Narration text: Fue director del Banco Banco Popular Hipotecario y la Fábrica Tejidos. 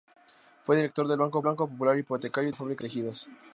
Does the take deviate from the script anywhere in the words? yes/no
no